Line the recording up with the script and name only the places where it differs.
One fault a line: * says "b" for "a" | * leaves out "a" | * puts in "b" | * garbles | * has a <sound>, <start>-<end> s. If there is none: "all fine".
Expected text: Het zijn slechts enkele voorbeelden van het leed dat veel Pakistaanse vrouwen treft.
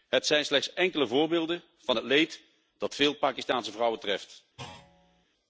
* has a thud, 4.6-5.3 s